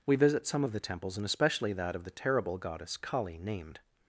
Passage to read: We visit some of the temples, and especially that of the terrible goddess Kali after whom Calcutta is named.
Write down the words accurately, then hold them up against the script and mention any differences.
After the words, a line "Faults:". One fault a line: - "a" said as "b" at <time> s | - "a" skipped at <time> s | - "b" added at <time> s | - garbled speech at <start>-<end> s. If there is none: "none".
We visit some of the temples, and especially that of the terrible goddess Kali named.
Faults:
- "after whom Calcutta is" skipped at 3.4 s